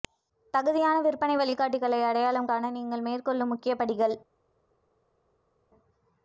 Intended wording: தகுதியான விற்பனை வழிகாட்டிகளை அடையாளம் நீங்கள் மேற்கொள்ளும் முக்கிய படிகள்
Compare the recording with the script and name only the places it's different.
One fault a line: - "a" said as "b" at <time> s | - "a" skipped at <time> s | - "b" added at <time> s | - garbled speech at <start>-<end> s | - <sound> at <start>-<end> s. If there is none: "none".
- "காண" added at 2.5 s